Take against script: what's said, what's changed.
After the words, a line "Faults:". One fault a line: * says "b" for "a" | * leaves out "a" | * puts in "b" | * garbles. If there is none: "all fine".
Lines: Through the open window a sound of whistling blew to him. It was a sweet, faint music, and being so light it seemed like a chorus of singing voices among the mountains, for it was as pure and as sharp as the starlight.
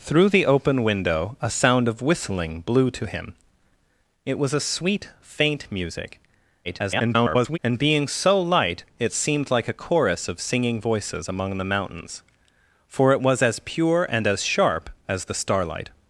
Through the open window a sound of whistling blew to him. It was a sweet, faint music, [garbled] and being so light it seemed like a chorus of singing voices among the mountains, for it was as pure and as sharp as the starlight.
Faults:
* garbles